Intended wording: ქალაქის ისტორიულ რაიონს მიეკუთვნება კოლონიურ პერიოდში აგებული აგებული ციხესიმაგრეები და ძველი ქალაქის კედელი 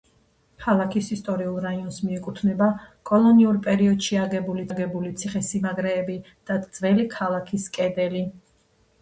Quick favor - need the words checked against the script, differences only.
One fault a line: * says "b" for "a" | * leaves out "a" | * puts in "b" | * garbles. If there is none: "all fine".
all fine